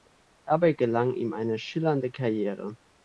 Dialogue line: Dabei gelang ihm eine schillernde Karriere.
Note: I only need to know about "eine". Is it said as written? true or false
true